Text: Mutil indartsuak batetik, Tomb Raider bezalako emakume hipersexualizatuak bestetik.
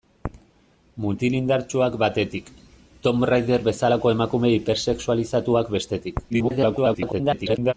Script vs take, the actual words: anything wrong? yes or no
yes